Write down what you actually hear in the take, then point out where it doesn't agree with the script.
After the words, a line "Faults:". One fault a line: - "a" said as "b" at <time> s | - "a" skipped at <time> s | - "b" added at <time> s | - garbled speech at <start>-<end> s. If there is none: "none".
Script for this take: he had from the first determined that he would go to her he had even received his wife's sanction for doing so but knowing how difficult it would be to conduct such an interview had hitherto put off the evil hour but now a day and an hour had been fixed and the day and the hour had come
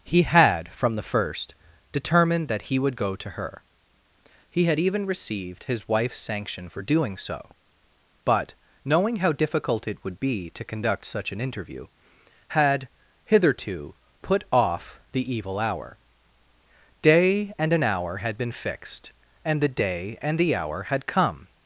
he had from the first determined that he would go to her he had even received his wife's sanction for doing so but knowing how difficult it would be to conduct such an interview had hitherto put off the evil hour day and an hour had been fixed and the day and the hour had come
Faults:
- "but now a" skipped at 16.0 s